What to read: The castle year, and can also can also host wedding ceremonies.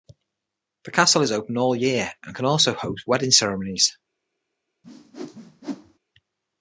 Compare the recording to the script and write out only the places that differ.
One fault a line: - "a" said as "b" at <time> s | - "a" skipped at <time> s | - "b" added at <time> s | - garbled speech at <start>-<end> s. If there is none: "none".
- "is open all" added at 1.2 s
- "can also" skipped at 2.7 s